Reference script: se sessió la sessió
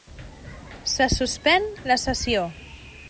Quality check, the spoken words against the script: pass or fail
fail